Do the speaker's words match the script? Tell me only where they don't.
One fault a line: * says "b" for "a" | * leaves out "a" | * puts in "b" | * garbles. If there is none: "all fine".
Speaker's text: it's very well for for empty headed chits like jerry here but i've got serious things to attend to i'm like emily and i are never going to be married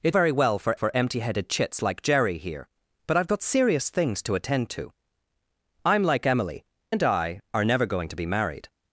all fine